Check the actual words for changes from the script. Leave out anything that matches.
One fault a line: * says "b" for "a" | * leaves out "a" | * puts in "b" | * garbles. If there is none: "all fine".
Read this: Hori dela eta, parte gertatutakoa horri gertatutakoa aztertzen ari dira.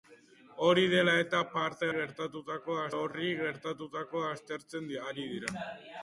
all fine